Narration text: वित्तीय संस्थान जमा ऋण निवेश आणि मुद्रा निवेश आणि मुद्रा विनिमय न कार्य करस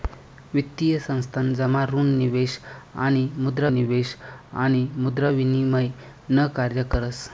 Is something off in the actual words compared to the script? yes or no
no